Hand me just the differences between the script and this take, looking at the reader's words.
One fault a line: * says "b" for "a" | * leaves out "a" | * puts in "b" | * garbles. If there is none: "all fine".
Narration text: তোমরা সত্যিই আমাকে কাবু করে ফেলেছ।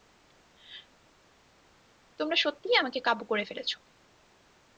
all fine